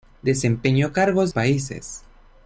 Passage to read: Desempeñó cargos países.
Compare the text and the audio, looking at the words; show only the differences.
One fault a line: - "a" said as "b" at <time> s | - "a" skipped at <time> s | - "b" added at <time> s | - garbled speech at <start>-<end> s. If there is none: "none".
none